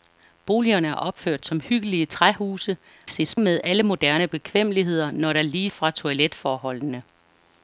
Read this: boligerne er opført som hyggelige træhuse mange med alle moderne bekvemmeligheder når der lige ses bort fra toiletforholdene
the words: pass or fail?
fail